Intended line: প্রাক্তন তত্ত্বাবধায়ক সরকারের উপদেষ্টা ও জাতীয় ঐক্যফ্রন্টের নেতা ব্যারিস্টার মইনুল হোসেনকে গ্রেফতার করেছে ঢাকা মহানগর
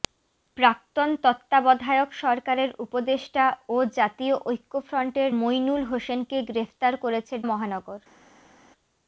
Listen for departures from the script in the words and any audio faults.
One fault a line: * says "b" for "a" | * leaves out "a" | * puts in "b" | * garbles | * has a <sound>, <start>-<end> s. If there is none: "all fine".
* leaves out "নেতা ব্যারিস্টার"
* leaves out "ঢাকা"